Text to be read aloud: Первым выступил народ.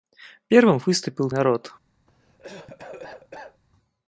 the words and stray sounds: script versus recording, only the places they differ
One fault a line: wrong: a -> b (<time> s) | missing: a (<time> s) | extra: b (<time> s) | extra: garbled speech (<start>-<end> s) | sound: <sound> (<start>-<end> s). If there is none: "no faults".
sound: cough (2.1-3.6 s)